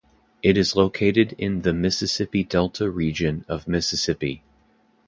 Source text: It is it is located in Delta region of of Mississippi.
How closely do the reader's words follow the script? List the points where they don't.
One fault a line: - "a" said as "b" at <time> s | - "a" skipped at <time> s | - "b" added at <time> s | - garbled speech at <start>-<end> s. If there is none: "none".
- "it is located in" said as "located in the Mississippi" at 0.8 s
- "of" skipped at 3.7 s